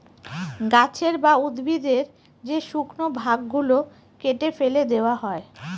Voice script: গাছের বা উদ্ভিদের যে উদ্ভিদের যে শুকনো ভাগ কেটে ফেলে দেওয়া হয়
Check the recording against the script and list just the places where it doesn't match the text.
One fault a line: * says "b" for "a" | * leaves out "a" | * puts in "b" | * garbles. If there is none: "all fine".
* leaves out "উদ্ভিদের যে"
* puts in "গুলো"